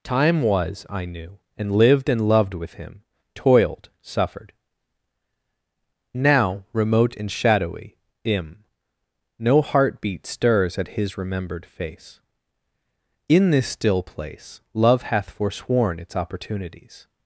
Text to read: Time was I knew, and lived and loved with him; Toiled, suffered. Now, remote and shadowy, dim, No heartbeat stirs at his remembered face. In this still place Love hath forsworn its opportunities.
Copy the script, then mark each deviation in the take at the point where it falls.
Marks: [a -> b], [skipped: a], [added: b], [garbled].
Time was I knew, and lived and loved with him; Toiled, suffered. Now, remote and shadowy, [dim, -> im] No heartbeat stirs at his remembered face. In this still place Love hath forsworn its opportunities.